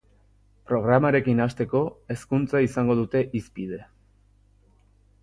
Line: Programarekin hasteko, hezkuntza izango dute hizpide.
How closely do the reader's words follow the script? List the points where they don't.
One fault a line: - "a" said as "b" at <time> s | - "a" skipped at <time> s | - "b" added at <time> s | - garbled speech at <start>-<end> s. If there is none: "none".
none